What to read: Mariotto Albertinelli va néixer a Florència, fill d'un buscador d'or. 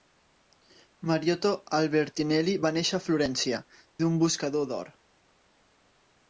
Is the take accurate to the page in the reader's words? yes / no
no